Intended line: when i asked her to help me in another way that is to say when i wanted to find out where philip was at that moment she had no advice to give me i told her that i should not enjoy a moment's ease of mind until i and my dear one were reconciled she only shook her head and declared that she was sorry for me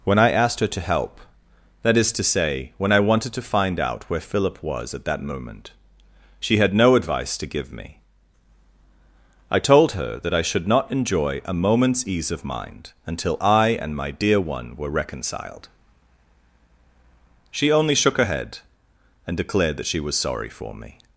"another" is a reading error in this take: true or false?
true